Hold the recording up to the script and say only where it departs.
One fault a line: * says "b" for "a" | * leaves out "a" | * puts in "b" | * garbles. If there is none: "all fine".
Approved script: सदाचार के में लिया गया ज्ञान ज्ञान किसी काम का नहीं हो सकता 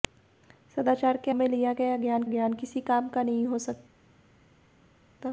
all fine